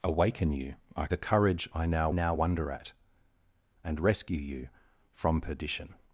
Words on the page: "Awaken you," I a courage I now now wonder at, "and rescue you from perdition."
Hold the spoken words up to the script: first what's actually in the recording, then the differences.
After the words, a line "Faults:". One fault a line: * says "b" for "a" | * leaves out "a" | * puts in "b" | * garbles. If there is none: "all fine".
"Awaken you," I a courage I now now wonder at, "and rescue you from perdition."
Faults:
all fine